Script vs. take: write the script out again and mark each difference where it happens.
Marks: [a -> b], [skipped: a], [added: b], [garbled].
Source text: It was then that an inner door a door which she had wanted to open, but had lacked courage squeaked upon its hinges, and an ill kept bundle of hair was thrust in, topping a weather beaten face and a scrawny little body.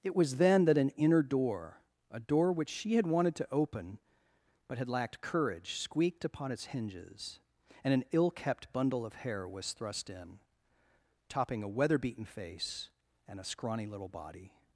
It was then that an inner door a door which she had wanted to open, but had lacked courage squeaked upon its hinges, and an ill kept bundle of hair was thrust in, topping a weather beaten face and a scrawny little body.